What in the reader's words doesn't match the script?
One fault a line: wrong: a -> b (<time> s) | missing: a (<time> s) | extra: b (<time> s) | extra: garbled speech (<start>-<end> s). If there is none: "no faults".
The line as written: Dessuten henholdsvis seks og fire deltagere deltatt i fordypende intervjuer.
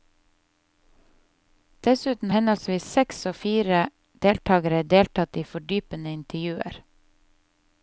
no faults